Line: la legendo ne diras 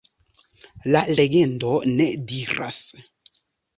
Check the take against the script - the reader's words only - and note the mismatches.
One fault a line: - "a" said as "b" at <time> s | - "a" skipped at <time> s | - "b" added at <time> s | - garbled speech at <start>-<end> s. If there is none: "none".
none